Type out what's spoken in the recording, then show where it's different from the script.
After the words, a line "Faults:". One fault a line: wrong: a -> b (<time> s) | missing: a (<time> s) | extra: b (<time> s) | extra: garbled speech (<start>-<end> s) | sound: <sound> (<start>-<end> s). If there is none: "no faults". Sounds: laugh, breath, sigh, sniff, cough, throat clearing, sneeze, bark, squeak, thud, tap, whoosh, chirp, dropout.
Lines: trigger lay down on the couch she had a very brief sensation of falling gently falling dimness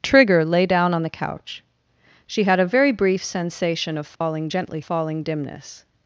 trigger lay down on the couch she had a very brief sensation of falling gently falling dimness
Faults:
sound: dropout (4.2-4.2 s)